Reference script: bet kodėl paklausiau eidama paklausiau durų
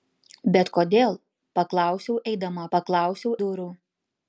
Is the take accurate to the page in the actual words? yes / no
yes